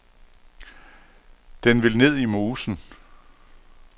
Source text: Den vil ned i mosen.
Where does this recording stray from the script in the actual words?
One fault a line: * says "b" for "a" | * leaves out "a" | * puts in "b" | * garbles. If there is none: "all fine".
all fine